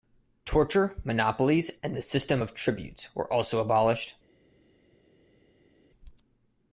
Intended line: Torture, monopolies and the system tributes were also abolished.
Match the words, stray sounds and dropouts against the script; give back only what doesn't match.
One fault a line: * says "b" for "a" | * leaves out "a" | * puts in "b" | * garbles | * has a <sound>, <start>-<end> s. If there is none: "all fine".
* puts in "of"